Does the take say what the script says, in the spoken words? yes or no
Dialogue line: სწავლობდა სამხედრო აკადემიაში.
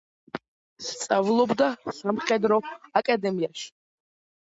yes